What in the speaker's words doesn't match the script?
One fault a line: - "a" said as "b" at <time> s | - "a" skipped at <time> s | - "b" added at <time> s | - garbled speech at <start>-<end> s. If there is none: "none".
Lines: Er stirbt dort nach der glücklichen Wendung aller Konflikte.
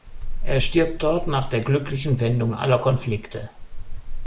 none